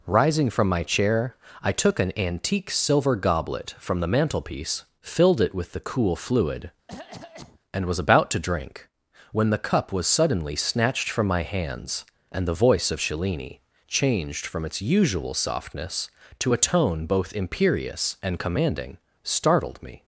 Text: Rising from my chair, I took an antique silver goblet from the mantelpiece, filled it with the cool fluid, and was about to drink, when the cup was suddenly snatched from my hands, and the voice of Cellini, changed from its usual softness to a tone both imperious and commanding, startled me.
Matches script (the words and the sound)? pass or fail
fail